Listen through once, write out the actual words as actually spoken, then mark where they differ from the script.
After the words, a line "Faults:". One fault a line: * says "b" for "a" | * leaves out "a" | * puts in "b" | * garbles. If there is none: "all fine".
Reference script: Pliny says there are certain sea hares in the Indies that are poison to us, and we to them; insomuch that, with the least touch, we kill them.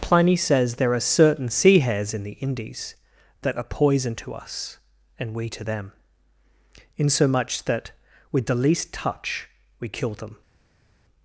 Pliny says there are certain sea hares in the Indies that are poison to us, and we to them; insomuch that, with the least touch, we kill them.
Faults:
all fine